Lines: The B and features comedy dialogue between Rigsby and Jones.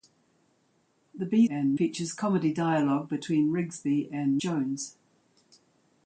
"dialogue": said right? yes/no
yes